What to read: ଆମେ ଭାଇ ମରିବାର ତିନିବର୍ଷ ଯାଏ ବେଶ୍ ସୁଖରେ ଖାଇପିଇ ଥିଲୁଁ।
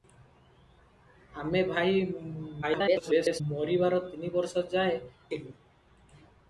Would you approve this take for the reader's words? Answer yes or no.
no